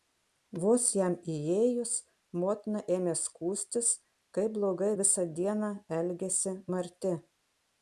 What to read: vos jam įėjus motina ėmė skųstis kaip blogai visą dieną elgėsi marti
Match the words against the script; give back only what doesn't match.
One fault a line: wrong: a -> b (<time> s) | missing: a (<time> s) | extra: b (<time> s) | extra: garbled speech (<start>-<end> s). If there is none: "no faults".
no faults